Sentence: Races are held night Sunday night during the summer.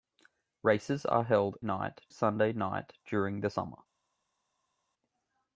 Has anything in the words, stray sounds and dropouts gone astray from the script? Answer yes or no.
no